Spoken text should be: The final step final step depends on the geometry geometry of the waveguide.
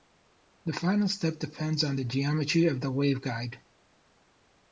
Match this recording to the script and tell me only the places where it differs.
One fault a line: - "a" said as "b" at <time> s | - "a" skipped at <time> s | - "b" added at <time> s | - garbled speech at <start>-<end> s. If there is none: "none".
- "final step" skipped at 1.4 s
- "geometry" skipped at 2.7 s